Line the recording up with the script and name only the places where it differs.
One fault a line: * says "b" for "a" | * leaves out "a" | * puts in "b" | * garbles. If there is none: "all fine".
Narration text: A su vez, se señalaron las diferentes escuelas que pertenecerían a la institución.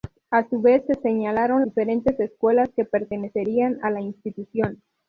* leaves out "las"